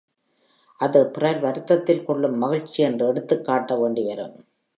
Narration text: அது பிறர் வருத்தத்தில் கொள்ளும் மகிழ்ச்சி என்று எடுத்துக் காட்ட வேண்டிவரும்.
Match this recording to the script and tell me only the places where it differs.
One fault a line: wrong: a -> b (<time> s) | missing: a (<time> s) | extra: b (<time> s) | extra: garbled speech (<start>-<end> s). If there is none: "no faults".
no faults